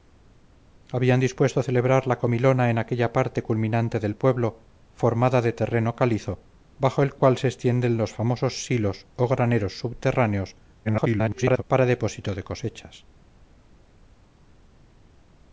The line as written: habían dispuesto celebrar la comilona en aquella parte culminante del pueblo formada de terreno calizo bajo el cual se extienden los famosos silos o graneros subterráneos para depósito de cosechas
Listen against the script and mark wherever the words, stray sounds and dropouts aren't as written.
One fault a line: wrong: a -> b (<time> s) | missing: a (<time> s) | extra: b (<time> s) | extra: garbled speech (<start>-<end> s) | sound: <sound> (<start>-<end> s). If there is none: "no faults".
extra: garbled speech (10.9-11.6 s)